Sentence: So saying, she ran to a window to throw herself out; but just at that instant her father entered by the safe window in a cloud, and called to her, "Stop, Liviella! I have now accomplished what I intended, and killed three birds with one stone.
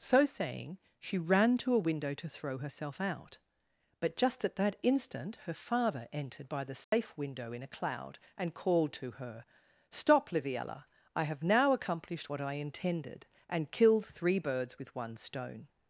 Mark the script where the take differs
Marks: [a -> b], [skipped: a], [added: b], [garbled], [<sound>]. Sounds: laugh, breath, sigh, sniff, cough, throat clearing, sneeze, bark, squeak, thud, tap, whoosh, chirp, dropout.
So saying, she ran to a window to throw herself out; but just at that instant her father entered by the safe [dropout] window in a cloud, and called to her, "Stop, Liviella! I have now accomplished what I intended, and killed three birds with one stone.